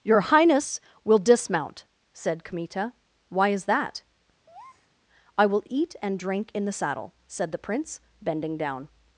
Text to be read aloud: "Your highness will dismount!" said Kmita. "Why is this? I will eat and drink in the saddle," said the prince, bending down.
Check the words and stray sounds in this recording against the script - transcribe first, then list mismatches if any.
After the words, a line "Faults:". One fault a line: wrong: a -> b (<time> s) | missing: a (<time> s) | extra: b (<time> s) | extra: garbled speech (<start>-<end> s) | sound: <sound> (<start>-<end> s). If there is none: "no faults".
"Your highness will dismount!" said Kmita. "Why is that? I will eat and drink in the saddle," said the prince, bending down.
Faults:
wrong: this -> that (3.6 s)
sound: breath (4.5-4.9 s)